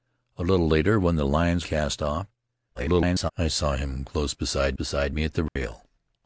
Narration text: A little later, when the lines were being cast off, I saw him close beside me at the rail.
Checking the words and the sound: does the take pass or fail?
fail